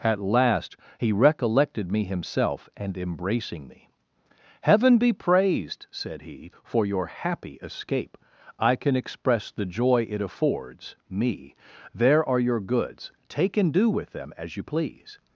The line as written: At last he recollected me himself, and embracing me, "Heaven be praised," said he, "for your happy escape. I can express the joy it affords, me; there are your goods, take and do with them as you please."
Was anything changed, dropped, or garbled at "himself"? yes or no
no